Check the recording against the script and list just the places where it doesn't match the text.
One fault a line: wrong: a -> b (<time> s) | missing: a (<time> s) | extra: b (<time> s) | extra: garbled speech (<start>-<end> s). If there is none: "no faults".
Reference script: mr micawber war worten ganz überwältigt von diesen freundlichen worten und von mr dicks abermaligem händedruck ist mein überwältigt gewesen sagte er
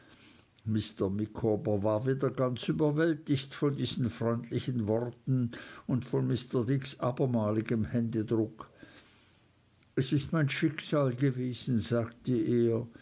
wrong: worten -> wieder (2.1 s)
extra: es (10.0 s)
wrong: überwältigt -> schicksal (10.5 s)